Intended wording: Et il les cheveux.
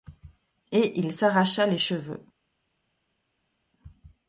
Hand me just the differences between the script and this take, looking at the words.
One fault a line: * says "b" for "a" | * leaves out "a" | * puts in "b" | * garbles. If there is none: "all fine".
* puts in "s'arracha"